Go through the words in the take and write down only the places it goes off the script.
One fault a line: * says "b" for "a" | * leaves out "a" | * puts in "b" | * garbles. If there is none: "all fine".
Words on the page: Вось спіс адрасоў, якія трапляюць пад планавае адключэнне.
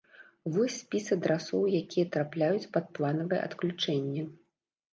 all fine